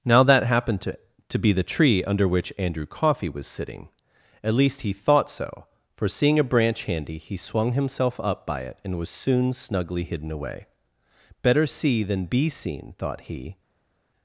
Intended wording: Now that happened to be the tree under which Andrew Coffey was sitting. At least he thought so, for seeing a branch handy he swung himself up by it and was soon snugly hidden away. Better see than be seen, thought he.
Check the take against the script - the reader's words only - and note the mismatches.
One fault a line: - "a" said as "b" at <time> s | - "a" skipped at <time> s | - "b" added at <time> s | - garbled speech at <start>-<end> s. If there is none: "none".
- "to" added at 1.3 s